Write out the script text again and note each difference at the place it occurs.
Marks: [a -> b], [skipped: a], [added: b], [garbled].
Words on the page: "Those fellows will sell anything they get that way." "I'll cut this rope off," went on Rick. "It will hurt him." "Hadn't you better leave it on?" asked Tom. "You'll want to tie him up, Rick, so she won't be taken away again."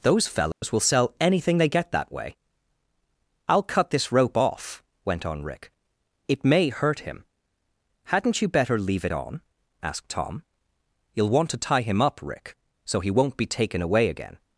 "Those fellows will sell anything they get that way." "I'll cut this rope off," went on Rick. "It [will -> may] hurt him." "Hadn't you better leave it on?" asked Tom. "You'll want to tie him up, Rick, so [she -> he] won't be taken away again."